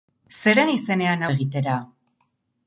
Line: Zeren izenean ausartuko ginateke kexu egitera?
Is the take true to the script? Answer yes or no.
no